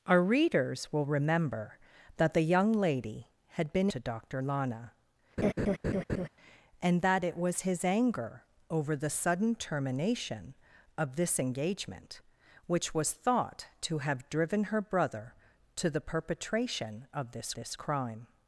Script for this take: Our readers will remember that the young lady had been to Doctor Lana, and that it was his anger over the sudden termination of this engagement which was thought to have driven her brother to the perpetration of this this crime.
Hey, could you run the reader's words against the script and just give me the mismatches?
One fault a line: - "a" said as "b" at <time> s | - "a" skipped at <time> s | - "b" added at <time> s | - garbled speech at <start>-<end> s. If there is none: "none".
none